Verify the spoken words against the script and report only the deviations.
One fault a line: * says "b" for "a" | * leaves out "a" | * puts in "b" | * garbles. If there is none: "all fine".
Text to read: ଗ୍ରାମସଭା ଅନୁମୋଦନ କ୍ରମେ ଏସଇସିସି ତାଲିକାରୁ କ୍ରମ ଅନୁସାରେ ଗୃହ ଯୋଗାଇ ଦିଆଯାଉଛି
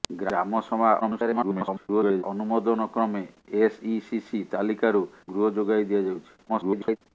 * garbles
* leaves out "କ୍ରମ ଅନୁସାରେ"
* garbles